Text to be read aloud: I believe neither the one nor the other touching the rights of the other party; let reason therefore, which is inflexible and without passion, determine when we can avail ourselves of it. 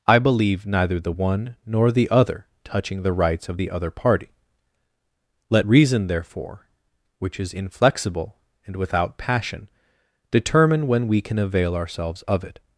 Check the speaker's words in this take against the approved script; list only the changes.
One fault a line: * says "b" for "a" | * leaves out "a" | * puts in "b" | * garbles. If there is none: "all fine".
all fine